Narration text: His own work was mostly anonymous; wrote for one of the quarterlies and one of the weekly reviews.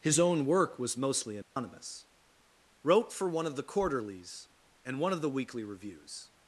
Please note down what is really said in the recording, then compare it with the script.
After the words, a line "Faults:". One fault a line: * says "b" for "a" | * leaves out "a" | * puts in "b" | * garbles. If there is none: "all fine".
His own work was mostly anonymous; wrote for one of the quarterlies and one of the weekly reviews.
Faults:
all fine